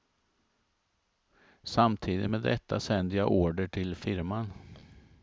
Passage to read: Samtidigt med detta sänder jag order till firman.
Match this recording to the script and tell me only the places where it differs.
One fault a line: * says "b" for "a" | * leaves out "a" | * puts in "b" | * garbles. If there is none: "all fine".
all fine